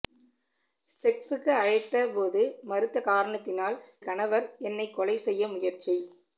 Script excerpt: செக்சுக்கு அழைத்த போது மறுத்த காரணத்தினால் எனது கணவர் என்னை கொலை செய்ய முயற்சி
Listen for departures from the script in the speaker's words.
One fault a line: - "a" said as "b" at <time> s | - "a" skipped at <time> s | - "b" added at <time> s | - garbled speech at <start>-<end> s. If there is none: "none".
- "எனது" skipped at 3.8 s